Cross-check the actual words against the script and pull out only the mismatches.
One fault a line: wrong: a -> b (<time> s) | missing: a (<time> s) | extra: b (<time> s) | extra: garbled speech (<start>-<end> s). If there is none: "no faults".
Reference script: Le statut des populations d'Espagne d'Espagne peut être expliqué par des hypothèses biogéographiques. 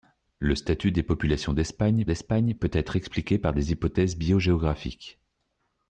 no faults